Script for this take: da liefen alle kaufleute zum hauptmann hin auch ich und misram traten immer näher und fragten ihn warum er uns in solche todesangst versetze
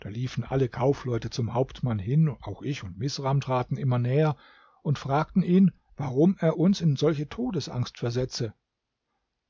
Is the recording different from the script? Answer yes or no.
no